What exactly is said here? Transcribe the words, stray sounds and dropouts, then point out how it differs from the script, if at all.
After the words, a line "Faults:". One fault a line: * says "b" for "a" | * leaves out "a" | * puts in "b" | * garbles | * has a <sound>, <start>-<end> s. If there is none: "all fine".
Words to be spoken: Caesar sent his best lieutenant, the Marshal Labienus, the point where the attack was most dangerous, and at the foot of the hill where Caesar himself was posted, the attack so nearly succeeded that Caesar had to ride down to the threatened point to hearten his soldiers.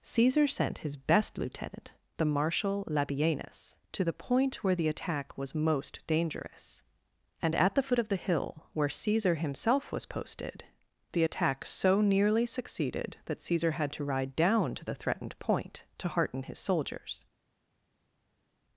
Caesar sent his best lieutenant, the Marshal Labienus, to the point where the attack was most dangerous, and at the foot of the hill where Caesar himself was posted, the attack so nearly succeeded that Caesar had to ride down to the threatened point to hearten his soldiers.
Faults:
* puts in "to"